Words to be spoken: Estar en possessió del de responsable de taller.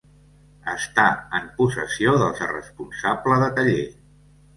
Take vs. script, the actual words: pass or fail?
pass